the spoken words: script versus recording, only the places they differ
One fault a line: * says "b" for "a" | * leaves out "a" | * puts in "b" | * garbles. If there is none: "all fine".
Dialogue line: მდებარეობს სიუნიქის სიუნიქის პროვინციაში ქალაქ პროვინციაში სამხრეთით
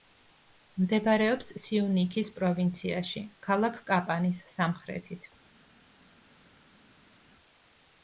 * leaves out "სიუნიქის"
* says "კაპანის" for "პროვინციაში"